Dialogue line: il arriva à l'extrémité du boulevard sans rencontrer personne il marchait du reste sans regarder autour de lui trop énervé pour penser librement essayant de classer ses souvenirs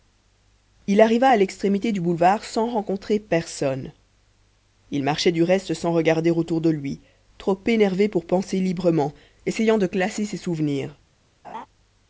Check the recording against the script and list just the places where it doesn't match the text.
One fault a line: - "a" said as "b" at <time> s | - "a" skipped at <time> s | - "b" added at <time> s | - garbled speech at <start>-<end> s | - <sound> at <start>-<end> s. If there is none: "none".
- laugh at 11.4-11.7 s